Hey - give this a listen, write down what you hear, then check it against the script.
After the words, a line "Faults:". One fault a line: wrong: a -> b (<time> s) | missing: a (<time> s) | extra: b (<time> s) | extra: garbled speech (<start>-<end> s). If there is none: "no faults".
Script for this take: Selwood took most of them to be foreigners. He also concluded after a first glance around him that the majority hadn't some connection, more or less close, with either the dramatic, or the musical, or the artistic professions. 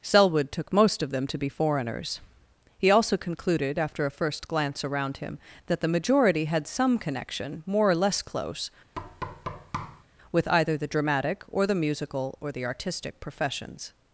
Selwood took most of them to be foreigners. He also concluded after a first glance around him that the majority had some connection, more or less close, with either the dramatic, or the musical, or the artistic professions.
Faults:
wrong: hadn't -> had (6.5 s)